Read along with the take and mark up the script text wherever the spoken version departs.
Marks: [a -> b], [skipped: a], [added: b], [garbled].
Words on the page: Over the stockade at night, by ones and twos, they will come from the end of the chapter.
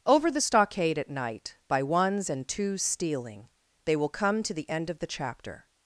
Over the stockade at night, by ones and twos, [added: stealing] they will come [from -> to] the end of the chapter.